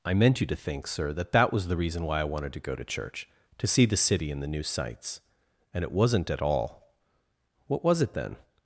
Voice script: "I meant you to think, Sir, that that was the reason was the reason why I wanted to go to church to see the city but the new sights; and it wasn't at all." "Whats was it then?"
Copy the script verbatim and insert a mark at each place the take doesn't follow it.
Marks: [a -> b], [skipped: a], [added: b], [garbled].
"I meant you to think, Sir, that that was the reason [skipped: was the reason] why I wanted to go to church to see the city [but -> and] the new sights; and it wasn't at all." ["Whats -> What] was it then?"